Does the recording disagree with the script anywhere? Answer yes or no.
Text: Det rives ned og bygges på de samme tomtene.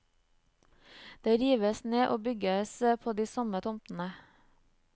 no